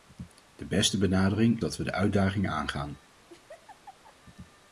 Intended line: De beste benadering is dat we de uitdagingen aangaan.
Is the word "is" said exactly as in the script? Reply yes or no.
no